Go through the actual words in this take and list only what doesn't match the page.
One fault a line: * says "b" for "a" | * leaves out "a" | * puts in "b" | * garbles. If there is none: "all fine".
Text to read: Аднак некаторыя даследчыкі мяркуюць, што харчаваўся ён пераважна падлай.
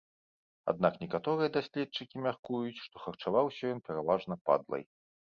all fine